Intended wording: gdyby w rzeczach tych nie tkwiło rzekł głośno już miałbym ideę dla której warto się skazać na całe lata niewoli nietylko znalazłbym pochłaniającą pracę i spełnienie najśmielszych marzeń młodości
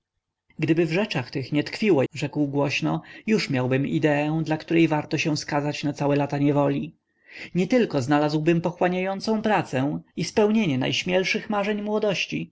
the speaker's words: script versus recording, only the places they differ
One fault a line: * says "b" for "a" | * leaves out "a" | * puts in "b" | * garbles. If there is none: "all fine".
all fine